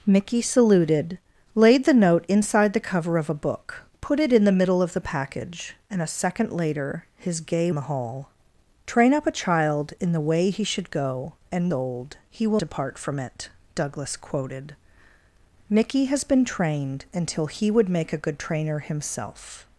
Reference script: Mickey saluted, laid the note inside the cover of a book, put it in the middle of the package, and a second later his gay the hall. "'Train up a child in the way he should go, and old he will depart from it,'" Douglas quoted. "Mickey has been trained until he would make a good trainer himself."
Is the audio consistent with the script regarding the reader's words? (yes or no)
yes